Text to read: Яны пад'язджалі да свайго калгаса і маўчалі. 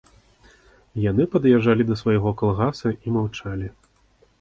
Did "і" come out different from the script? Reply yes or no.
no